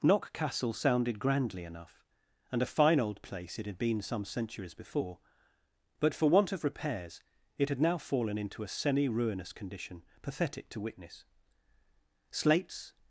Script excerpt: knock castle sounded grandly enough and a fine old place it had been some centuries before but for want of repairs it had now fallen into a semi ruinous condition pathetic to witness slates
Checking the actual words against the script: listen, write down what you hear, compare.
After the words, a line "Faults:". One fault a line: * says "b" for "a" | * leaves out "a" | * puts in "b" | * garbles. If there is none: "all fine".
knock castle sounded grandly enough and a fine old place it had been some centuries before but for want of repairs it had now fallen into a semi ruinous condition pathetic to witness slates
Faults:
all fine